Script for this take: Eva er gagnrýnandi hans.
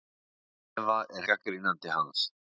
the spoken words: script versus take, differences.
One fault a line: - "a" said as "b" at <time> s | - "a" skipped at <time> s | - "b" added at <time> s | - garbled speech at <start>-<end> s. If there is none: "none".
none